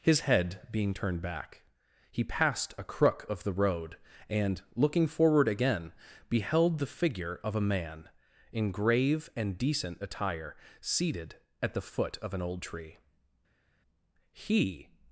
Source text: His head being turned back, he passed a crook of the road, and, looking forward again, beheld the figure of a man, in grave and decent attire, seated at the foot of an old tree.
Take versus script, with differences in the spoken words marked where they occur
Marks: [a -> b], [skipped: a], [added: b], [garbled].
His head being turned back, he passed a crook of the road, and, looking forward again, beheld the figure of a man, in grave and decent attire, seated at the foot of an old tree. [added: He]